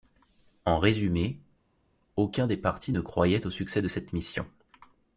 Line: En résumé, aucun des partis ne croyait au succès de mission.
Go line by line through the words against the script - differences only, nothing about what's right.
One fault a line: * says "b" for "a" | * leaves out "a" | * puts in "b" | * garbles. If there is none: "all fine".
* puts in "cette"